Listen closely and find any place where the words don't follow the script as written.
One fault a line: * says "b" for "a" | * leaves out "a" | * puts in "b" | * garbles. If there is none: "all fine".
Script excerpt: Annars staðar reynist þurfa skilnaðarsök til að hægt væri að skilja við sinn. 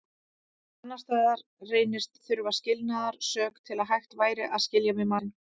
all fine